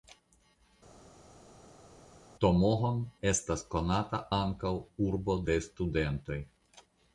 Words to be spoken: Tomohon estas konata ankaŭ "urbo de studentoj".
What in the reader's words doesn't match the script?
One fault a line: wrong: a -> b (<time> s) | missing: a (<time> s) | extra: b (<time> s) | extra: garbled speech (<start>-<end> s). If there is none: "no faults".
no faults